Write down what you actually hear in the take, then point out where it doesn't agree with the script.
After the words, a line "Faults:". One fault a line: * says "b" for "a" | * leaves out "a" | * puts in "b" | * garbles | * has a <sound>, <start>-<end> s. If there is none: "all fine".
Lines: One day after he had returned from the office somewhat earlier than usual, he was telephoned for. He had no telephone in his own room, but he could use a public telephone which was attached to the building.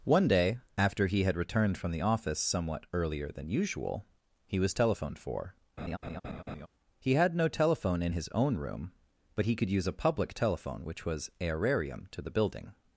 One day after he had returned from the office somewhat earlier than usual, he was telephoned for. He had no telephone in his own room, but he could use a public telephone which was aerarium to the building.
Faults:
* has a laugh, 5.8-6.7 s
* says "aerarium" for "attached"